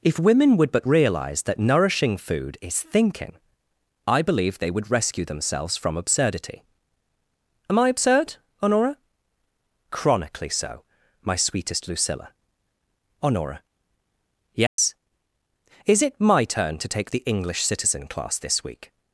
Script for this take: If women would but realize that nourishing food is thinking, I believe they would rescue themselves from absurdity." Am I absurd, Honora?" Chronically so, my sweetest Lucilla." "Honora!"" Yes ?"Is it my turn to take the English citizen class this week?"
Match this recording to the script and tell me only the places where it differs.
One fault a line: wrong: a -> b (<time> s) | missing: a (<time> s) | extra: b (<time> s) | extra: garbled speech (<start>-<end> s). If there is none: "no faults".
no faults